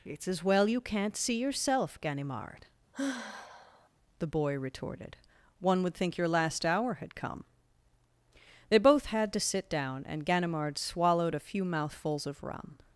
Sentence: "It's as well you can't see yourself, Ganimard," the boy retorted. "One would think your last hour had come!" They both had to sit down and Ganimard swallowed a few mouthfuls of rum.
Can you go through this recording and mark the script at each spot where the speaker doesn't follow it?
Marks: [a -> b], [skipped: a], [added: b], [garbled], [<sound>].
"It's as well you can't see yourself, Ganimard," [sigh] the boy retorted. "One would think your last hour had come!" They both had to sit down and Ganimard swallowed a few mouthfuls of rum.